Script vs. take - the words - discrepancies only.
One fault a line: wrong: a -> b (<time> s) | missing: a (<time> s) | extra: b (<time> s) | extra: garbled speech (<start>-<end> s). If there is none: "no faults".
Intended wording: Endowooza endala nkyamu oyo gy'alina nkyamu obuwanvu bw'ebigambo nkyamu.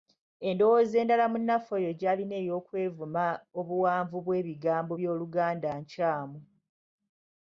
wrong: nkyamu -> munnaffe (1.3 s)
wrong: nkyamu -> ey'okwevuma (2.4 s)
extra: by'Oluganda (5.0 s)